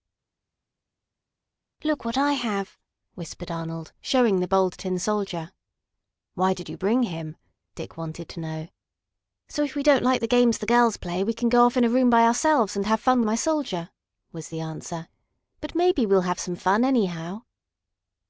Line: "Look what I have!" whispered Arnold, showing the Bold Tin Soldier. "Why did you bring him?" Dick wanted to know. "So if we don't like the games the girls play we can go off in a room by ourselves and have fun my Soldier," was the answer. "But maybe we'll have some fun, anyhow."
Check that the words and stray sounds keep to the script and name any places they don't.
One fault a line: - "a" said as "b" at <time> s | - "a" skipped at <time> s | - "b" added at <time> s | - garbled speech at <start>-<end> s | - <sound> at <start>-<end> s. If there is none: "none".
none